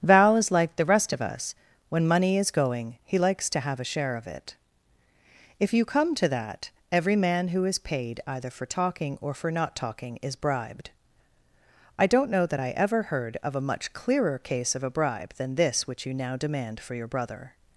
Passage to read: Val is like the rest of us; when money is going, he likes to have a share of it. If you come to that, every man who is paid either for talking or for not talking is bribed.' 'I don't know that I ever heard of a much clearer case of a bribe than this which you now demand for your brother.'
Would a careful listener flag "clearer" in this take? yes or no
no